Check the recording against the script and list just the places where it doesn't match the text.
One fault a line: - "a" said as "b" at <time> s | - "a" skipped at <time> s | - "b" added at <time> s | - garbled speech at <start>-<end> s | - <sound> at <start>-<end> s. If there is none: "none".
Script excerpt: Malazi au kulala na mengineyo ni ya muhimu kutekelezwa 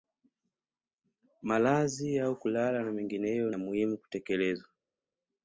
- "ni" skipped at 3.5 s